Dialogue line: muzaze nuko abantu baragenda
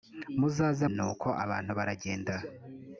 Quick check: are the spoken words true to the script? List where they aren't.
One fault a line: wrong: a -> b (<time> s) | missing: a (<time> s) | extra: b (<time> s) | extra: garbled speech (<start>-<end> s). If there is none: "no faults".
no faults